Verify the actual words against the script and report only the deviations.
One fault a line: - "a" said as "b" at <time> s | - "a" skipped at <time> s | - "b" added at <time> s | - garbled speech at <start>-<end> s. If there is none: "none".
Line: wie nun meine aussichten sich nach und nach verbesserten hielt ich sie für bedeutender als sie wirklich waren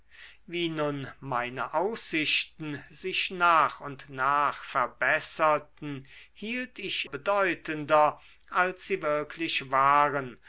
- "sie für" skipped at 7.1 s